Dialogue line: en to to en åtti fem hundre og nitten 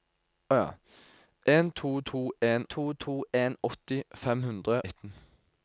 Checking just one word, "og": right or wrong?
wrong